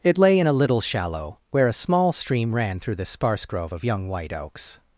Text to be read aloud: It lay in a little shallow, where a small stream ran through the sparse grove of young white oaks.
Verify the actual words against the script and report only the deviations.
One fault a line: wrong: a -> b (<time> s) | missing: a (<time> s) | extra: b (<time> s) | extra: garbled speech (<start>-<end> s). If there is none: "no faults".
no faults